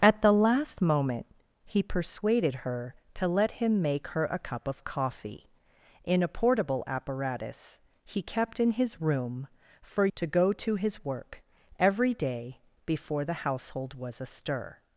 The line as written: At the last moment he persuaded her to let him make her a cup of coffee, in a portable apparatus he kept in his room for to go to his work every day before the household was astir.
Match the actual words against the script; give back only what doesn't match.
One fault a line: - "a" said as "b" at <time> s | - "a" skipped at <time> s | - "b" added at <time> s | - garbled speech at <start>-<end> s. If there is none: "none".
none